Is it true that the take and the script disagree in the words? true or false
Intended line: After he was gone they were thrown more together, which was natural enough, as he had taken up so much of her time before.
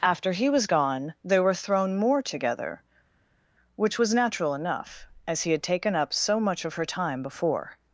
false